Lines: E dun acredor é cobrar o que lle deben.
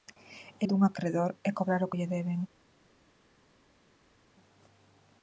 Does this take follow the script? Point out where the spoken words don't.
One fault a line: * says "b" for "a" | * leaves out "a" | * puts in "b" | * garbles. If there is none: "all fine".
all fine